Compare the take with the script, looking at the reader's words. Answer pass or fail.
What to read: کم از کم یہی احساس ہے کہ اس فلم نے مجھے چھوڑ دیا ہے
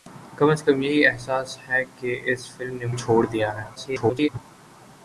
fail